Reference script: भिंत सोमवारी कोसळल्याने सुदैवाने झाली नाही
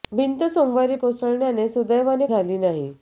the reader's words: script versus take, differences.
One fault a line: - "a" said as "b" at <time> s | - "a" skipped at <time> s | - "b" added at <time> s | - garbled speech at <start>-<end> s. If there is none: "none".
none